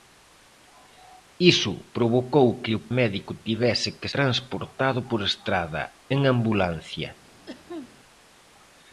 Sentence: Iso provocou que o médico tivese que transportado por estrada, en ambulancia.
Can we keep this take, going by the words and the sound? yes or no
no